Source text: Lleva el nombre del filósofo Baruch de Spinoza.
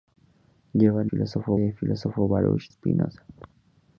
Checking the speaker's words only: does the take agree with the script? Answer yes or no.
no